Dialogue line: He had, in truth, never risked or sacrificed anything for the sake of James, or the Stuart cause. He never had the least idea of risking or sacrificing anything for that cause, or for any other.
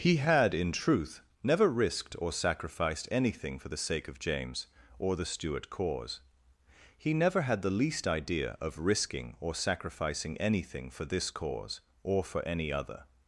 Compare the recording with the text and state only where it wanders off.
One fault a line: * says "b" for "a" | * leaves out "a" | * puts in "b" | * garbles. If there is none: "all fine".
* says "this" for "that"